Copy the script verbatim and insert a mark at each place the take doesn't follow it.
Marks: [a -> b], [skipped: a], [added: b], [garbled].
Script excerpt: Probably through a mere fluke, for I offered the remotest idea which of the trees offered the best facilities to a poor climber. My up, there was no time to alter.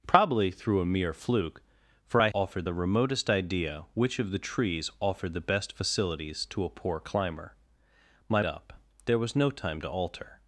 Probably through a mere fluke, for I offered the remotest idea which of the trees offered the best facilities to a poor climber. My up, there was no time to alter.